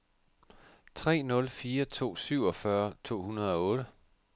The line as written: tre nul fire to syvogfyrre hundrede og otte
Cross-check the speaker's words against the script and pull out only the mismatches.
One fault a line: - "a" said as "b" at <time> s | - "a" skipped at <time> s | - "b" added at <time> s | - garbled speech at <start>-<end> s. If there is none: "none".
- "to" added at 3.0 s